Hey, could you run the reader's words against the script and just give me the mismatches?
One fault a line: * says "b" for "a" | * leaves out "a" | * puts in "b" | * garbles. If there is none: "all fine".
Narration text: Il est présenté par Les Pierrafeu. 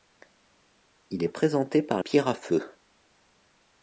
* leaves out "Les"